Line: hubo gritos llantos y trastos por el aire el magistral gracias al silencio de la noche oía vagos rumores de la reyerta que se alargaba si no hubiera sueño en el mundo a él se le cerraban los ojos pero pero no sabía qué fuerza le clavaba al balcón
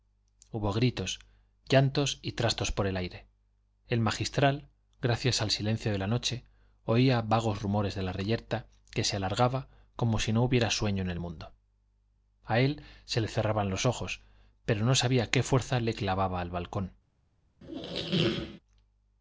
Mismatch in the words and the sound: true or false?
true